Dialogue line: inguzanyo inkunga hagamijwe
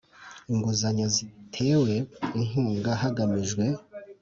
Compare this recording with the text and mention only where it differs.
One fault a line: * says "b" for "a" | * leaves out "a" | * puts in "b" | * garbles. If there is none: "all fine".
* puts in "zitewe"